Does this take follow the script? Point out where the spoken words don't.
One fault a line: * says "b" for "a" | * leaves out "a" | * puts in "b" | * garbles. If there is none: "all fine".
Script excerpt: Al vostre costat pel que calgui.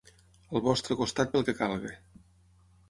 all fine